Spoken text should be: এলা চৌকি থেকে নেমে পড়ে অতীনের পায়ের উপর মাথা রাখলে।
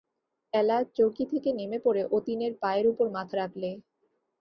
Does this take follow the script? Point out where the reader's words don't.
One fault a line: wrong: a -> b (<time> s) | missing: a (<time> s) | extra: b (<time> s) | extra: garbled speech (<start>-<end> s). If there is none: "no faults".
no faults